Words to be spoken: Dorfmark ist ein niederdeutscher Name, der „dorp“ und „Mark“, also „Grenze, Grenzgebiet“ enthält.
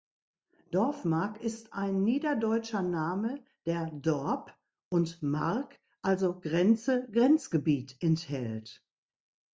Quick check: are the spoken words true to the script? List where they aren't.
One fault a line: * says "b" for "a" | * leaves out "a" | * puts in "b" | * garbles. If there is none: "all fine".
all fine